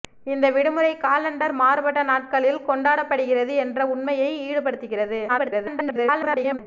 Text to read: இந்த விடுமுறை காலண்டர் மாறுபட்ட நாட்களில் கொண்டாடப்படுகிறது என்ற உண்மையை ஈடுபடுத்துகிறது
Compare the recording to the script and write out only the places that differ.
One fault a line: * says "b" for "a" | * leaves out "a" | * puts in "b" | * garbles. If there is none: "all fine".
* garbles